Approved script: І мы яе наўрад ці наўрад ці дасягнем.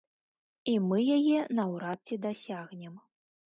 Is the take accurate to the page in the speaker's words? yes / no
no